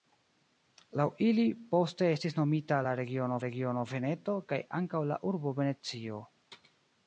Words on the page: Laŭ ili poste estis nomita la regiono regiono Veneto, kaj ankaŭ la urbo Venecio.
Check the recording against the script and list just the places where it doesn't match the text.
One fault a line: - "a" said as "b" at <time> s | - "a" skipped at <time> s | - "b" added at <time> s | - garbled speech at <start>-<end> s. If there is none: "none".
none